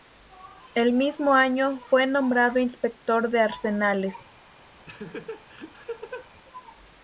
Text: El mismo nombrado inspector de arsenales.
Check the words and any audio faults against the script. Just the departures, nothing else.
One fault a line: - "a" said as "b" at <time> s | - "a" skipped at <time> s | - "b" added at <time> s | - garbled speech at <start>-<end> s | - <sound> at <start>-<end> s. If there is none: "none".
- "año fue" added at 1.4 s
- laugh at 4.9-6.3 s